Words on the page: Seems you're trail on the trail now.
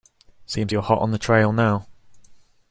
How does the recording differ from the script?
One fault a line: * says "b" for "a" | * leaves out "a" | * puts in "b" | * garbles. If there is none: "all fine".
* says "hot" for "trail"